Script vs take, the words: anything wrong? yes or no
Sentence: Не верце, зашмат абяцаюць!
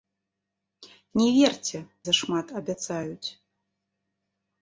no